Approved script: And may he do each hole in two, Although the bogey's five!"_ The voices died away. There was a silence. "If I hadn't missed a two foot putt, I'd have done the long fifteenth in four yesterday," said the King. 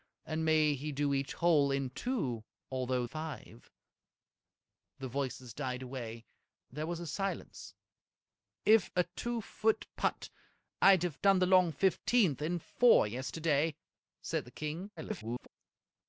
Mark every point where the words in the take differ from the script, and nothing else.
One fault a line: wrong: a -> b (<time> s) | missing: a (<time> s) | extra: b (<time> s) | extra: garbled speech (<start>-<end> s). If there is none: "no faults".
missing: the bogey's (3.0 s)
missing: I hadn't missed (8.9 s)
extra: garbled speech (15.0-15.5 s)